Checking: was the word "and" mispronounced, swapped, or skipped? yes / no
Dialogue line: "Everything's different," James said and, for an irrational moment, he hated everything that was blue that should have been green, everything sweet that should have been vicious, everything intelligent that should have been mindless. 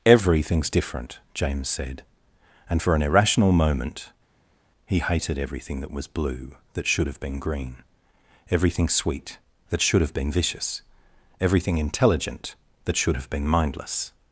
no